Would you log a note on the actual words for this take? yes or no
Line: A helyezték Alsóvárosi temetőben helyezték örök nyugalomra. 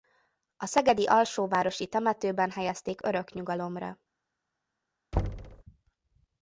yes